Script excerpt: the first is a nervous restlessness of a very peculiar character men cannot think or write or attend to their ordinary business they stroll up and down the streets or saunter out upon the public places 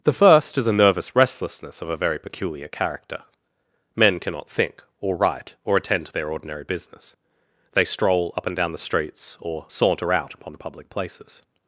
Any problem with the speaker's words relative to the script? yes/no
no